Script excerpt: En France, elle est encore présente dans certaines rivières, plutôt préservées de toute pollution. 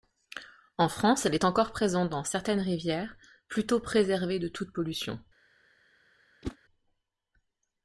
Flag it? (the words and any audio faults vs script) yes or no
yes